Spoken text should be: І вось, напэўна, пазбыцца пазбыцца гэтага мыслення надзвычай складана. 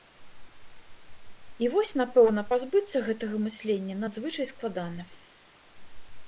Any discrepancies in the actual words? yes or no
yes